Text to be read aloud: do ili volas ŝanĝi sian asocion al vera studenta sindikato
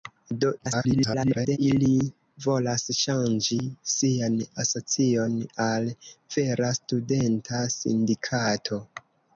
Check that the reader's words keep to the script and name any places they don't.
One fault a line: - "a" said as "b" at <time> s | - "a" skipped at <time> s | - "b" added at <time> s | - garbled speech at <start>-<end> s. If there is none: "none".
- garbled speech at 0.6-1.6 s